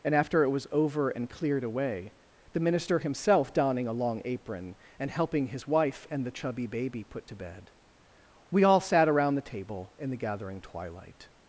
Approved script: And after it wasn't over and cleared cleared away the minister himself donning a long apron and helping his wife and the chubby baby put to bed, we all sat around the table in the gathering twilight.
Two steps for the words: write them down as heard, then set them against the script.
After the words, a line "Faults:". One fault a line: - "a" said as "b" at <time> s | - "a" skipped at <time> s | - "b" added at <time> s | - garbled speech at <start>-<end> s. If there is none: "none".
And after it was over and cleared away the minister himself donning a long apron and helping his wife and the chubby baby put to bed, we all sat around the table in the gathering twilight.
Faults:
- "wasn't" said as "was" at 0.5 s
- "cleared" skipped at 1.6 s